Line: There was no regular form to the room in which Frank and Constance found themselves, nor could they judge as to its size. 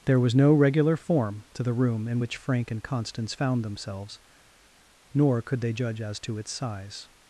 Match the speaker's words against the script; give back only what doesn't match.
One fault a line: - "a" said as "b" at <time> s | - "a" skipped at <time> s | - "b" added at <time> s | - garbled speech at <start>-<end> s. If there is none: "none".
none